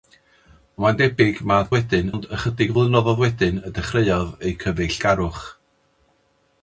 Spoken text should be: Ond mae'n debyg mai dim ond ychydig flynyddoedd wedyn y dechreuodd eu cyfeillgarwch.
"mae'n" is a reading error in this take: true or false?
false